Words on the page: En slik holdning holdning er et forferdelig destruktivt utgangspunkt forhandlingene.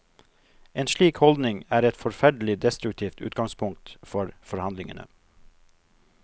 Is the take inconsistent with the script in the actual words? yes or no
yes